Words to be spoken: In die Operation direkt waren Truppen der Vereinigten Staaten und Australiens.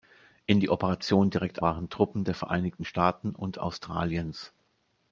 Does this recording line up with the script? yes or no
yes